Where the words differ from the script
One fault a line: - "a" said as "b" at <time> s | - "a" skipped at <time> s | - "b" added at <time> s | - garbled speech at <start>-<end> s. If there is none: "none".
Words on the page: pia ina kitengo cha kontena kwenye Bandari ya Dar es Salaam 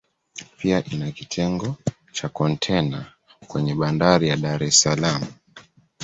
none